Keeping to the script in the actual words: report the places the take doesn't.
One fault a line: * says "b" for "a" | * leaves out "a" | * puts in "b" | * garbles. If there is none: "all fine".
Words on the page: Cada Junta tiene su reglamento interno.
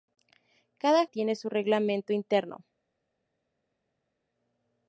* leaves out "Junta"